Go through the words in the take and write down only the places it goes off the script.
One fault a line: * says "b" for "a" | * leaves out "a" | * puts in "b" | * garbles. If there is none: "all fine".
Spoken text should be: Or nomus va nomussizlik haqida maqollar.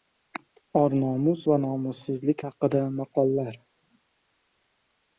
all fine